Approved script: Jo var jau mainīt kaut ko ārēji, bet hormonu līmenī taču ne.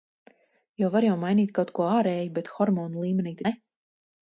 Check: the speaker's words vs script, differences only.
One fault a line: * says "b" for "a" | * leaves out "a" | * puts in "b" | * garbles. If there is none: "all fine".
* leaves out "taču"